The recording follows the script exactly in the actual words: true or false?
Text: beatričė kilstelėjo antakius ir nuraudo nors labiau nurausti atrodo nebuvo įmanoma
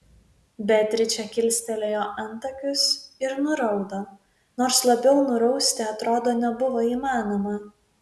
true